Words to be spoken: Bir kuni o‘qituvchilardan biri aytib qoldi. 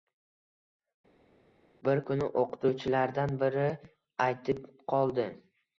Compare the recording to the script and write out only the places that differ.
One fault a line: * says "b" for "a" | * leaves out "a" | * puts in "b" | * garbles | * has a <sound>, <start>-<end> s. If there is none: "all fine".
all fine